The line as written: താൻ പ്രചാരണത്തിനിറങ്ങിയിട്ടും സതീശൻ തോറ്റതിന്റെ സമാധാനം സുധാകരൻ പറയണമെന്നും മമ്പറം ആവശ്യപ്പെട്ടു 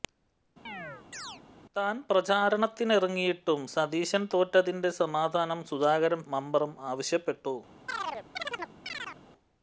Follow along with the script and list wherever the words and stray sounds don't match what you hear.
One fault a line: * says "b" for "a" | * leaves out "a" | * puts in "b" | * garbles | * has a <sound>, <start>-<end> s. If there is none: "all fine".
* has a chirp, 0.7-1.4 s
* leaves out "പറയണമെന്നും"
* has a chirp, 7.9-9.2 s